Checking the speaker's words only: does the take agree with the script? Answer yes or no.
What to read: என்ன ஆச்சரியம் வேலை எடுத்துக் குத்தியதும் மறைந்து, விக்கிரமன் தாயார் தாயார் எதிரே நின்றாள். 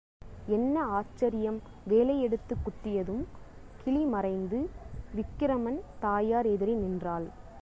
no